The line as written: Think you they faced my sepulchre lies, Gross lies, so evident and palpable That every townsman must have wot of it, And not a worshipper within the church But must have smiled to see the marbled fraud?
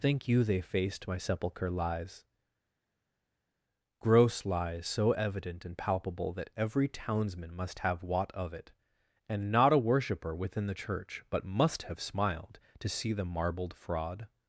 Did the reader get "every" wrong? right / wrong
right